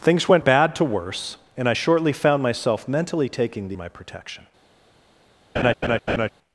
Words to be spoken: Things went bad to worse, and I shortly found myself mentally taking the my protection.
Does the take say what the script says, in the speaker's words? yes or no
yes